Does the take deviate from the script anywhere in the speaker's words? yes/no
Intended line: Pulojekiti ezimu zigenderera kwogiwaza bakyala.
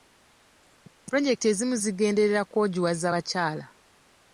no